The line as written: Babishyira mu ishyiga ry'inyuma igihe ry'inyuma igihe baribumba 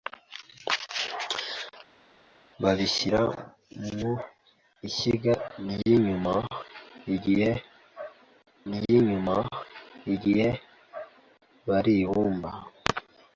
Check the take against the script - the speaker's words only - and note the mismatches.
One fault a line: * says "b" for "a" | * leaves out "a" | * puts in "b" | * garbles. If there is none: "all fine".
all fine